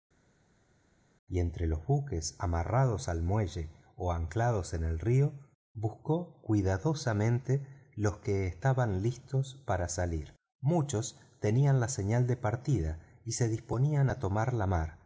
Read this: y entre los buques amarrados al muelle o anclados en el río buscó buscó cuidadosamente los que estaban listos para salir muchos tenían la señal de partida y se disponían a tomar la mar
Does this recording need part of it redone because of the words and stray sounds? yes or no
yes